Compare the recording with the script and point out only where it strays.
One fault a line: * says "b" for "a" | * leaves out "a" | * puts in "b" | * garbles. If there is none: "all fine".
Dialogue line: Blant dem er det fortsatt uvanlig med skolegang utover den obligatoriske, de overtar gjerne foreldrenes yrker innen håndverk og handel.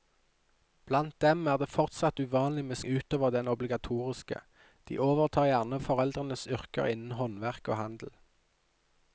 * leaves out "skolegang"